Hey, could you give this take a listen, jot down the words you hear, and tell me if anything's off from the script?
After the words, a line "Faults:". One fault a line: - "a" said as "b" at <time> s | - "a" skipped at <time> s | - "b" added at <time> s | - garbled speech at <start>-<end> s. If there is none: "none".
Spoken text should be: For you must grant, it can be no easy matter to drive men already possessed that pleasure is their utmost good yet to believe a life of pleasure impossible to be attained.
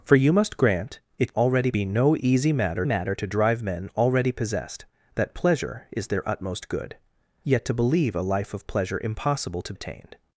For you must grant, it already be no easy matter matter to drive men already possessed that pleasure is their utmost good yet to believe a life of pleasure impossible to attained.
Faults:
- "can" said as "already" at 1.4 s
- "matter" added at 2.8 s
- "be" skipped at 9.7 s